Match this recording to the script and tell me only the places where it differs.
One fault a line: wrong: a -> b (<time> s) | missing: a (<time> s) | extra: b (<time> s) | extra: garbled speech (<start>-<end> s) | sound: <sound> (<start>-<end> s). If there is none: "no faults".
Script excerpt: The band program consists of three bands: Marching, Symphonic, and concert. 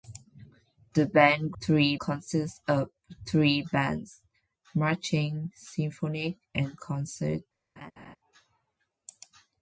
wrong: program -> three (1.6 s)
sound: laugh (7.8-8.2 s)